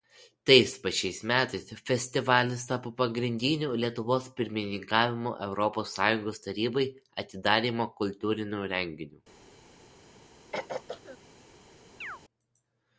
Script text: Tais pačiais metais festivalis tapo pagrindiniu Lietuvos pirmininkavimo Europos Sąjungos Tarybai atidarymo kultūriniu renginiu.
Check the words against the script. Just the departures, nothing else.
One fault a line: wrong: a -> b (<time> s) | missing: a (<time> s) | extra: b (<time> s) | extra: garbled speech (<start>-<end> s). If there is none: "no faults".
no faults